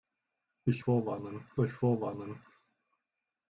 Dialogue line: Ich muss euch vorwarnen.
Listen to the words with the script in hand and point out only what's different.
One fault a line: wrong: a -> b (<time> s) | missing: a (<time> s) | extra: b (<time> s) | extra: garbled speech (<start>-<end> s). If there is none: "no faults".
wrong: muss -> vorwarnen (0.8 s)